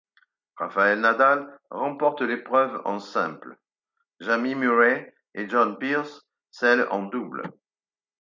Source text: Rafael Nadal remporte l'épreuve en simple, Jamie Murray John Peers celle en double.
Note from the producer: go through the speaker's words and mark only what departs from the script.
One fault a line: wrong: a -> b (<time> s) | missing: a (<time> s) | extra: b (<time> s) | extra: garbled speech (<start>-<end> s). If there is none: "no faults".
extra: et (5.3 s)